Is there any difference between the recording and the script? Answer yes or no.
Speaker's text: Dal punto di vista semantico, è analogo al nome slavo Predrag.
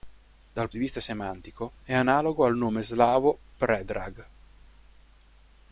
yes